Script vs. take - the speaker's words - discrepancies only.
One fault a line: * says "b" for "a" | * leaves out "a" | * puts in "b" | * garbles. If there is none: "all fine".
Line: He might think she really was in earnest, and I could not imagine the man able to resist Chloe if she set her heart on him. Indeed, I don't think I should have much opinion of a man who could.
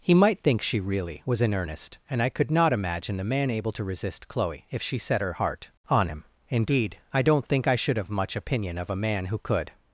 all fine